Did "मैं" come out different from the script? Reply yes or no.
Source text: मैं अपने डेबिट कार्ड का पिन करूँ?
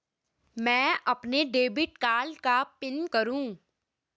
no